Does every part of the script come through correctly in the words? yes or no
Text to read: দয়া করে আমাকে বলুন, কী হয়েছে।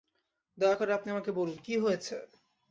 no